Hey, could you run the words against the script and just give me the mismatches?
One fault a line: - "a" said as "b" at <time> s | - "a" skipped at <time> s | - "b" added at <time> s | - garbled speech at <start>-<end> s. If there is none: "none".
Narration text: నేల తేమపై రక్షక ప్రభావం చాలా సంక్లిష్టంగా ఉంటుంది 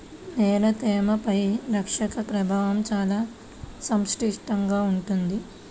none